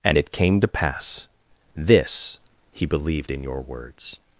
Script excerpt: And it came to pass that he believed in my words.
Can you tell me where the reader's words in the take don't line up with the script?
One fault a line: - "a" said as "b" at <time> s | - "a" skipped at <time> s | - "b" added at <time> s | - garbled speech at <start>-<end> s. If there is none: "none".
- "that" said as "this" at 1.8 s
- "my" said as "your" at 3.4 s